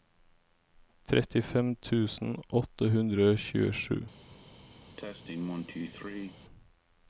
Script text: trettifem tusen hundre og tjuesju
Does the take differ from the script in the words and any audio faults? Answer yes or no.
yes